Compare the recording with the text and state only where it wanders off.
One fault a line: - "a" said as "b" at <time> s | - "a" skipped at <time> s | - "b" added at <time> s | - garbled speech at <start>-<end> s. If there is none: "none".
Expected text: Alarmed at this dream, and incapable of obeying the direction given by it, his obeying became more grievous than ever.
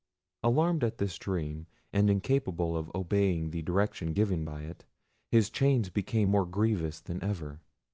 - "obeying" said as "chains" at 5.5 s